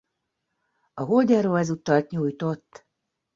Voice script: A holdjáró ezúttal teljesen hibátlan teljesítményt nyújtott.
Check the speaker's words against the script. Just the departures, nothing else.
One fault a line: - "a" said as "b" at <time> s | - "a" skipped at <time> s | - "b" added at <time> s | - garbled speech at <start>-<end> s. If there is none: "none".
- "teljesen hibátlan teljesítményt" skipped at 2.1 s